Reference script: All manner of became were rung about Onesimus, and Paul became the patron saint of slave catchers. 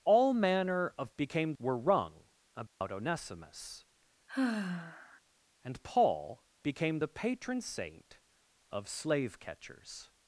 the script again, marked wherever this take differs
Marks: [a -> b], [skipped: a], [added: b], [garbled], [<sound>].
All manner of became were rung about [dropout] Onesimus, [sigh] and Paul became the patron saint of slave catchers.